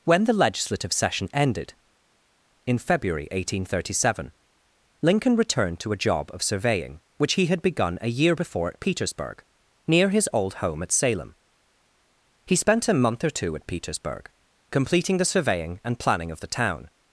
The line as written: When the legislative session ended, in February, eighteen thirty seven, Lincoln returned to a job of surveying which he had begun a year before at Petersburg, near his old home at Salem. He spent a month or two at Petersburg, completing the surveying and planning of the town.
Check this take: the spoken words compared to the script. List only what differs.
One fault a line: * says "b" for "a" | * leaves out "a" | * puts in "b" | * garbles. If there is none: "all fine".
all fine